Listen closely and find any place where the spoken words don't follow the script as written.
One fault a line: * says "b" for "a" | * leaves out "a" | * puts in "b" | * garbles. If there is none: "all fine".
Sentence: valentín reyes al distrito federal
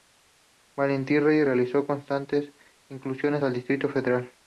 * puts in "realizó constantes incursiones"